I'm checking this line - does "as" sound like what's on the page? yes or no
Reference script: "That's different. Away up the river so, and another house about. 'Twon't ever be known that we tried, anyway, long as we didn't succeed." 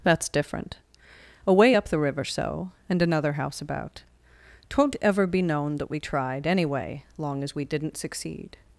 yes